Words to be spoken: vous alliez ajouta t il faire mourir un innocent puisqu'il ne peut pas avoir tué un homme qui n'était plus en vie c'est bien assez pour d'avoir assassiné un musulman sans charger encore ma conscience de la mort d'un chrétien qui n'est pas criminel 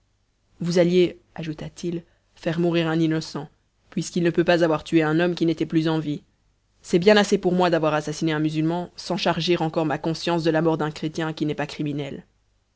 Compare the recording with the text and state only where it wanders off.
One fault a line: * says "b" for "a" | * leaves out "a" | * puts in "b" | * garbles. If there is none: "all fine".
* puts in "moi"